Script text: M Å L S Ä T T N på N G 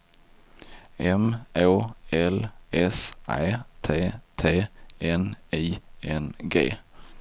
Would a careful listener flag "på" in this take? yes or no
yes